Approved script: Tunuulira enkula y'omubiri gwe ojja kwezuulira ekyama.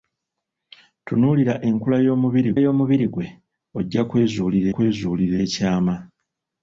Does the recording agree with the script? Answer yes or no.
no